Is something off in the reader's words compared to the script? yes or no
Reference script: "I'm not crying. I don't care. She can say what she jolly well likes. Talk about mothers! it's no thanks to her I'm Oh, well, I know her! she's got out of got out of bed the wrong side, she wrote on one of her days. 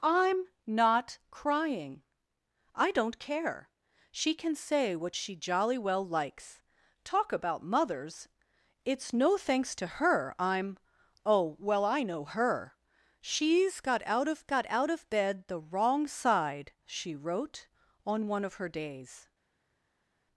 no